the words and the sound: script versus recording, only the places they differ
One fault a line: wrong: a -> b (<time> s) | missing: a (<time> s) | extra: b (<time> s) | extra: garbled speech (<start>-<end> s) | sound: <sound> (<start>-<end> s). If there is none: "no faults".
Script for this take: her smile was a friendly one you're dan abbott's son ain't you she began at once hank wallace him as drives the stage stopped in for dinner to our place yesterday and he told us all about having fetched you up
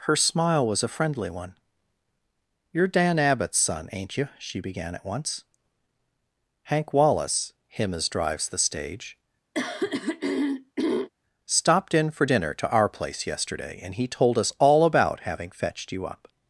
sound: throat clearing (9.5-11.1 s)